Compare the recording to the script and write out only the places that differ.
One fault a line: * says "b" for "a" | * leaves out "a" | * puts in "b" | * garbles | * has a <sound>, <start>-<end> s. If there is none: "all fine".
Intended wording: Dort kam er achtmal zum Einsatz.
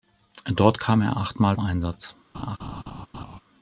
* leaves out "zum"
* has a laugh, 2.3-3.4 s